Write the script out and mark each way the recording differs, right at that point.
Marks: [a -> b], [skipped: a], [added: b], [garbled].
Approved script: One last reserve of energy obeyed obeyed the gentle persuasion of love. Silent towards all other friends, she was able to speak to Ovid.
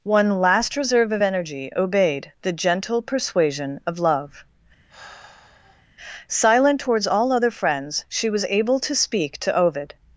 One last reserve of energy obeyed [skipped: obeyed] the gentle persuasion of love. Silent towards all other friends, she was able to speak to Ovid.